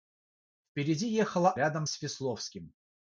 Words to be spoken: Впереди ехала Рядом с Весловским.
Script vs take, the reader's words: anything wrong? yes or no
no